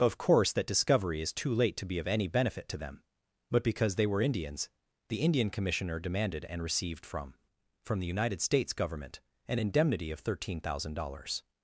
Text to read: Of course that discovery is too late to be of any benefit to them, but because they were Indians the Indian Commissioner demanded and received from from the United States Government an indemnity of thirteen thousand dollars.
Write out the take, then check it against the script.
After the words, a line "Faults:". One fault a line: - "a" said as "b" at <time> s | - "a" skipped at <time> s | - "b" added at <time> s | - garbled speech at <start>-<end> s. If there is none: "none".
Of course that discovery is too late to be of any benefit to them, but because they were Indians the Indian Commissioner demanded and received from from the United States Government an indemnity of thirteen thousand dollars.
Faults:
none